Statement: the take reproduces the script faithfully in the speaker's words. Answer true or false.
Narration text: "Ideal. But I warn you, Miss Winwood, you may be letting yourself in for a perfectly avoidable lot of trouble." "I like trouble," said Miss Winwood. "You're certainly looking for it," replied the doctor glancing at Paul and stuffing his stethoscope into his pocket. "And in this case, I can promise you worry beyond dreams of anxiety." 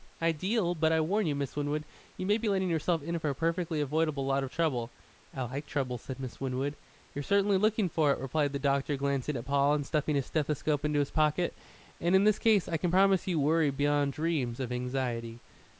true